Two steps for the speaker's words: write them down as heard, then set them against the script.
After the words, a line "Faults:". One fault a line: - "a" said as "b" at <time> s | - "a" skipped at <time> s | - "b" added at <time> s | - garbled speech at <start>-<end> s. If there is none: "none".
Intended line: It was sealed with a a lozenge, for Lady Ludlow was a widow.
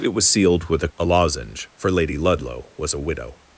It was sealed with a a lozenge, for Lady Ludlow was a widow.
Faults:
none